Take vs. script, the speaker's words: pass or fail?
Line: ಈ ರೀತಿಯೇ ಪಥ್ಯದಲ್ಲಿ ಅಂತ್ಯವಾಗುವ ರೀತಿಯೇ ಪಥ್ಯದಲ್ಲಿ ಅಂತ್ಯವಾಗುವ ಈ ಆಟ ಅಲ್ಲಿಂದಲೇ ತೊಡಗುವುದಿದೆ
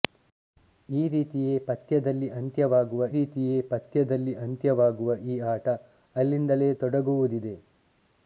pass